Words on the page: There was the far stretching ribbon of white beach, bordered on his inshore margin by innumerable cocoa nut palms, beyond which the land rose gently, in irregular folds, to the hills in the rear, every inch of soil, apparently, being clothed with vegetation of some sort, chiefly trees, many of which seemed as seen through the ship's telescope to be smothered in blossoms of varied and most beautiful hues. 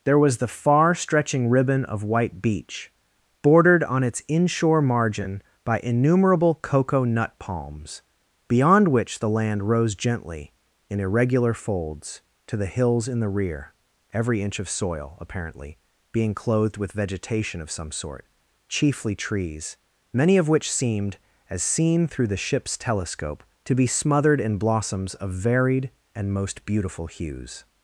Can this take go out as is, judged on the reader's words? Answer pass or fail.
fail